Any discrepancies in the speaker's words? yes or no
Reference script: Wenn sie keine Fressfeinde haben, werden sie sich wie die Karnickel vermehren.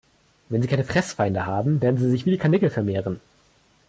no